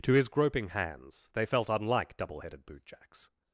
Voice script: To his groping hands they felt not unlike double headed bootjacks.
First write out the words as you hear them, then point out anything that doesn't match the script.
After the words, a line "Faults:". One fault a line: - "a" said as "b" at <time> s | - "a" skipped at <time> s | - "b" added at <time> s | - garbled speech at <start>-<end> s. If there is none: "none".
To his groping hands they felt unlike double headed bootjacks.
Faults:
- "not" skipped at 1.7 s